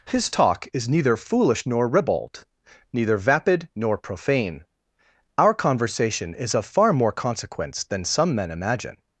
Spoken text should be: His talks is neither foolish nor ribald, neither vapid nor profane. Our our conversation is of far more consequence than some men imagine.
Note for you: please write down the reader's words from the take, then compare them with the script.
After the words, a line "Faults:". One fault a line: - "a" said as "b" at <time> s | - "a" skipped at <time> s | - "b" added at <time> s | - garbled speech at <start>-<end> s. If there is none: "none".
His talk is neither foolish nor ribald, neither vapid nor profane. Our conversation is of far more consequence than some men imagine.
Faults:
- "talks" said as "talk" at 0.3 s
- "our" skipped at 5.5 s